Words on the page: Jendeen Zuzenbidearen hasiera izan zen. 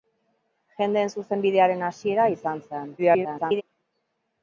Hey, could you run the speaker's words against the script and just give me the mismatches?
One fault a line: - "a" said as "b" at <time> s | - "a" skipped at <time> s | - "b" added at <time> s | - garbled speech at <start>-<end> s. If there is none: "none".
- garbled speech at 3.0-3.6 s